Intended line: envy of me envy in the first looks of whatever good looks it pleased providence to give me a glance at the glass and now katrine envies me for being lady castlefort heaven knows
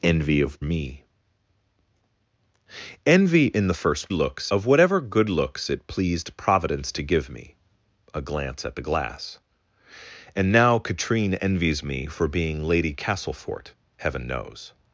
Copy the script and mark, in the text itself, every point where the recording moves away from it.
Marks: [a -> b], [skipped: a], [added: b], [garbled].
envy of me envy in the first looks of whatever good looks it pleased providence to give me a glance at the glass and now katrine envies me for being lady castlefort heaven knows